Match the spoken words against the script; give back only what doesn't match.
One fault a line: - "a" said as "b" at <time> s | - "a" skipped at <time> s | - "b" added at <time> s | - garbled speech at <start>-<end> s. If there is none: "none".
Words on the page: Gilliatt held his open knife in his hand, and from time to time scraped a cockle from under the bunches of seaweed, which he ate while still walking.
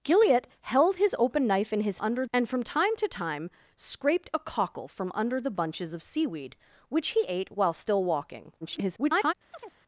- "hand" said as "under" at 2.0 s
- garbled speech at 8.6-9.3 s